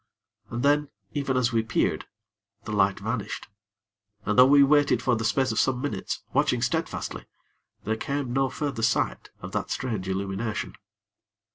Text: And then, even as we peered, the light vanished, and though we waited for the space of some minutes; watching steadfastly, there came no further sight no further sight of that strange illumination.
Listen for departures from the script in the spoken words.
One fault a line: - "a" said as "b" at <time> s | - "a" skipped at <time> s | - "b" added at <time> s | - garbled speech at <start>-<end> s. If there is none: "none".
- "no further sight" skipped at 9.3 s